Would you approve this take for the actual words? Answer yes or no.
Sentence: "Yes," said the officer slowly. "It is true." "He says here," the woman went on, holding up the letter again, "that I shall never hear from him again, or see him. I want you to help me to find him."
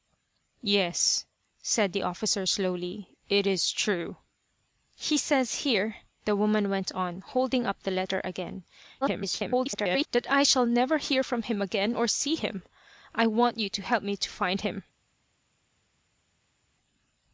no